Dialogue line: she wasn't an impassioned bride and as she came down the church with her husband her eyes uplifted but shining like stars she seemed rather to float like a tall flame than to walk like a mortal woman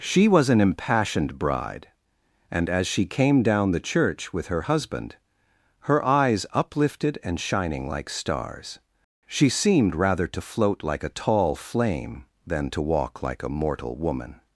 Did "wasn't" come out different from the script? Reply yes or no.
yes